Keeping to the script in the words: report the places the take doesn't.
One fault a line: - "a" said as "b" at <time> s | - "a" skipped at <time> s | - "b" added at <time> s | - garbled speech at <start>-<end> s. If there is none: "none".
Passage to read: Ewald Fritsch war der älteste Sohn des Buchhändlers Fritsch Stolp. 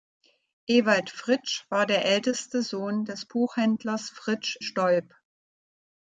none